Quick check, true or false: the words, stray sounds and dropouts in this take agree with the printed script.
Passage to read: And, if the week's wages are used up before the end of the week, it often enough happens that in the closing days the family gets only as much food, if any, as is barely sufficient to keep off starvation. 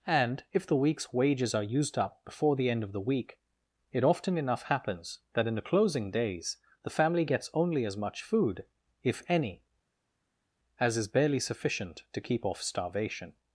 true